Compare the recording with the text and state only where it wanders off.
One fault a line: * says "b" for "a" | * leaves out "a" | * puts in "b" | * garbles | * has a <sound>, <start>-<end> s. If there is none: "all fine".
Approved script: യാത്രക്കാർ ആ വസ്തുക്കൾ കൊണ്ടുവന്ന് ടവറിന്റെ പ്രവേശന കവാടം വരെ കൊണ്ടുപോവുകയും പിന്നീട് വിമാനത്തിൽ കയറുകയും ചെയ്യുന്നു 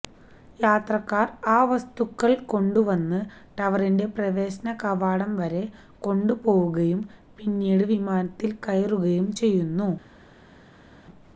all fine